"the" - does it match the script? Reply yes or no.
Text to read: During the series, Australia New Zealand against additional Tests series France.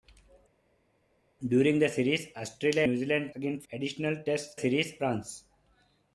yes